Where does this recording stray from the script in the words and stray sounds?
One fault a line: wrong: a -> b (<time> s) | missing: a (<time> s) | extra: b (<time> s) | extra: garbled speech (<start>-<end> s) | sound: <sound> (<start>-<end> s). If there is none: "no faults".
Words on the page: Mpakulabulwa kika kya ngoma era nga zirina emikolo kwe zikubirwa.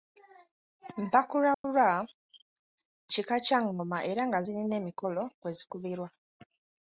sound: dropout (1.5-1.6 s)